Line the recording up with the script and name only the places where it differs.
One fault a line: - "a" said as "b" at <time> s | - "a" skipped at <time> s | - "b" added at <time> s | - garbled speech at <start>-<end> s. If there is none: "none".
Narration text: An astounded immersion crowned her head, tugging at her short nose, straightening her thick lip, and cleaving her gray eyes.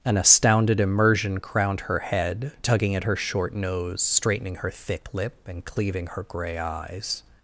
none